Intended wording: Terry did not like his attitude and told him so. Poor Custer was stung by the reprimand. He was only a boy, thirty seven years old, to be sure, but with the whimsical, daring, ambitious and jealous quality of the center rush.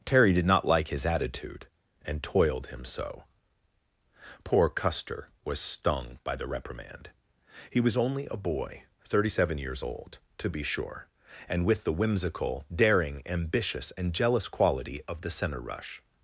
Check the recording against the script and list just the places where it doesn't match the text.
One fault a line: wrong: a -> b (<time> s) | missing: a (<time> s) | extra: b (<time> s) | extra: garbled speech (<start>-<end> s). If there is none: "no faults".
wrong: told -> toiled (2.2 s)
wrong: but -> and (11.5 s)